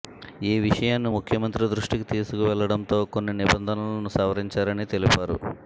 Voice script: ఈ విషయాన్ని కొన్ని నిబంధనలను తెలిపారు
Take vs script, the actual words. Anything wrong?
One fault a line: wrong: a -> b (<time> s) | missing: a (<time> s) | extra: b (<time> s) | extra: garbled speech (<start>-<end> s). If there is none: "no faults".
extra: ముఖ్యమంత్రి దృష్టికి తీసుకువెళ్లడంతో (1.1 s)
extra: సవరించారని (4.2 s)